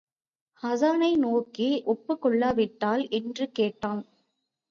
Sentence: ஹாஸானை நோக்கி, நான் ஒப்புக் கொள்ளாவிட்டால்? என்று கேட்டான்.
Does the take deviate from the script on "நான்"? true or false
true